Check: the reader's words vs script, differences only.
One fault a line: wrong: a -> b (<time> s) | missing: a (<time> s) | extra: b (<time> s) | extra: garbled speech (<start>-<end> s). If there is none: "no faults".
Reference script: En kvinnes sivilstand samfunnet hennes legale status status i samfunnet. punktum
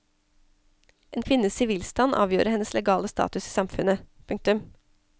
wrong: samfunnet -> avgjorde (2.1 s)
missing: status (3.5 s)